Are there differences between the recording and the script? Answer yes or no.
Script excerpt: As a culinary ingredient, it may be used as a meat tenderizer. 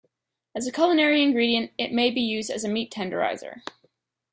no